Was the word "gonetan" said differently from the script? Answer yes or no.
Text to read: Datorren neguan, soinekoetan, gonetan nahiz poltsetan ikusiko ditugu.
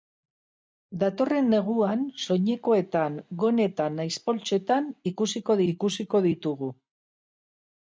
no